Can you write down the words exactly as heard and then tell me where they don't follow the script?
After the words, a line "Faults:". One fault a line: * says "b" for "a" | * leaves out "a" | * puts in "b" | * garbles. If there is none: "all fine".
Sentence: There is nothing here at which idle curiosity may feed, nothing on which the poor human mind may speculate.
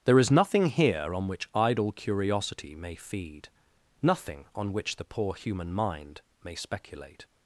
There is nothing here on which idle curiosity may feed, nothing on which the poor human mind may speculate.
Faults:
* says "on" for "at"